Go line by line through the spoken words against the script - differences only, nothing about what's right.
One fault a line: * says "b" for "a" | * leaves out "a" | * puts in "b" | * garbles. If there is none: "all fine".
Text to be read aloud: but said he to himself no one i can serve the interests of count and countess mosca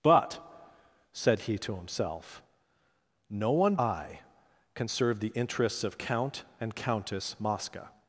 all fine